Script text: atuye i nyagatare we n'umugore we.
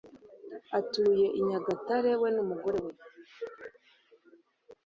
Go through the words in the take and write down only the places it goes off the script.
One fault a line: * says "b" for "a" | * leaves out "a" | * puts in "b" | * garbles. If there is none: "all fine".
all fine